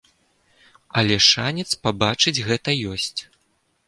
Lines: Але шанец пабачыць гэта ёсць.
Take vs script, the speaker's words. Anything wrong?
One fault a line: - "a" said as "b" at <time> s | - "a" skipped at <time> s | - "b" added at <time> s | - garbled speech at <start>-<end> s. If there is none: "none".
none